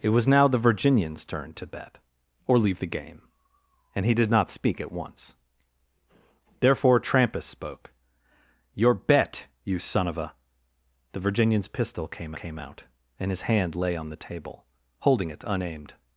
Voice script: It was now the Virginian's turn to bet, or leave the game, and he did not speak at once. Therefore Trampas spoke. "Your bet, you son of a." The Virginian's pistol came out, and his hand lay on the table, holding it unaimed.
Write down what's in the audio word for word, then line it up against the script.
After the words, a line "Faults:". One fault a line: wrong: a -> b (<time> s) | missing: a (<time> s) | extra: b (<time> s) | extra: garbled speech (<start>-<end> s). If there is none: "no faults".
It was now the Virginian's turn to bet, or leave the game, and he did not speak at once. Therefore Trampas spoke. "Your bet, you son of a." The Virginian's pistol came came out, and his hand lay on the table, holding it unaimed.
Faults:
extra: came (12.3 s)